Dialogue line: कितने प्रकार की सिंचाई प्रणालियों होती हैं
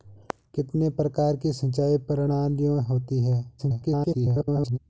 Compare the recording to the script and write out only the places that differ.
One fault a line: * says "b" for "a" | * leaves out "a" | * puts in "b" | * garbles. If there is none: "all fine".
* garbles